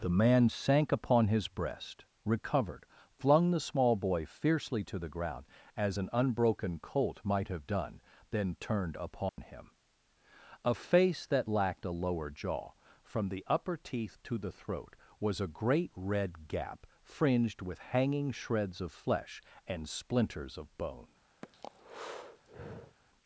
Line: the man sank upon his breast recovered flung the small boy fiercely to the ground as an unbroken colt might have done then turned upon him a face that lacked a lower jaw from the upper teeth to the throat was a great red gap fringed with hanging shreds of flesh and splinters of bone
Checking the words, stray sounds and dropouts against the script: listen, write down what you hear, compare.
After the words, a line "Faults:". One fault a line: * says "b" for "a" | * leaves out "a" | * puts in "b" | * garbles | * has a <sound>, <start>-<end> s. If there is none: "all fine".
the man sank upon his breast recovered flung the small boy fiercely to the ground as an unbroken colt might have done then turned upon him a face that lacked a lower jaw from the upper teeth to the throat was a great red gap fringed with hanging shreds of flesh and splinters of bone
Faults:
* has a dropout, 9.3-9.4 s
* has a breath, 21.4-23.0 s